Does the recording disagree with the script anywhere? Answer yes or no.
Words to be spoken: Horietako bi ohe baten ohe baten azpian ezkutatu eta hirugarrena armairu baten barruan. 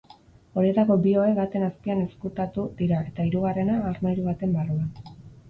yes